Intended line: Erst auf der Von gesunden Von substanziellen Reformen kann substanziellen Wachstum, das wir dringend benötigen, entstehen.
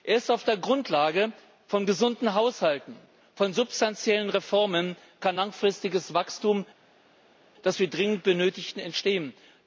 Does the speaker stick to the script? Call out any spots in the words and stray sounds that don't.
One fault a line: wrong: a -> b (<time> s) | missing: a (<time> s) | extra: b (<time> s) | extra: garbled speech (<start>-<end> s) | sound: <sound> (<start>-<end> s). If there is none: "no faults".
extra: Grundlage (0.6 s)
extra: Haushalten (2.3 s)
wrong: substanziellen -> langfristiges (5.4 s)